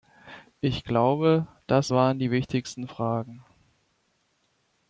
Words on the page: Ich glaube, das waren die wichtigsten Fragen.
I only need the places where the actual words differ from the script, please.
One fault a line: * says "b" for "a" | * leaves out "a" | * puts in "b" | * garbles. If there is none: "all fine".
all fine